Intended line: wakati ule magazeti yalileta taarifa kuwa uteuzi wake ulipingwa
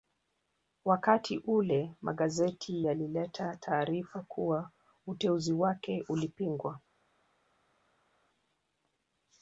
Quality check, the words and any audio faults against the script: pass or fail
pass